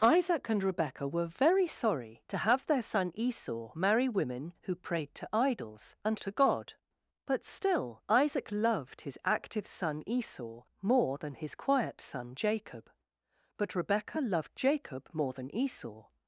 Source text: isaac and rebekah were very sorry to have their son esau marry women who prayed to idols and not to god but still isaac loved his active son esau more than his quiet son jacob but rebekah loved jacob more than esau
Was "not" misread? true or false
true